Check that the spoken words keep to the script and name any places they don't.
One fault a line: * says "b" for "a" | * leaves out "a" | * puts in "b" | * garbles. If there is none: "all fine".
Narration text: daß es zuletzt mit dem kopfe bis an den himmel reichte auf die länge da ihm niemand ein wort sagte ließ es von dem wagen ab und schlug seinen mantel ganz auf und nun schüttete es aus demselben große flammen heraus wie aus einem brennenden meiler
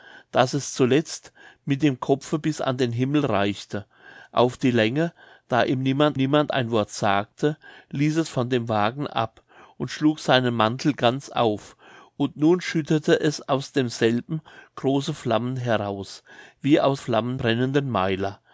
* puts in "niemand"
* says "flammen" for "einem"